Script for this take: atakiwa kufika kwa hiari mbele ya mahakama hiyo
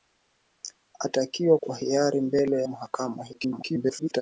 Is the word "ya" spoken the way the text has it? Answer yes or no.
no